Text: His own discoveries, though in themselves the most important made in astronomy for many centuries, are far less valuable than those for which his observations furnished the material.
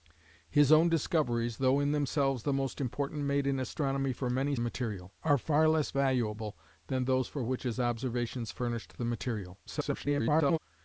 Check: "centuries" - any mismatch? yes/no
yes